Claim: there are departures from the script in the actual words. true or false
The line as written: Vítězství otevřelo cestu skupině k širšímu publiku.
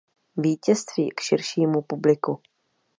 true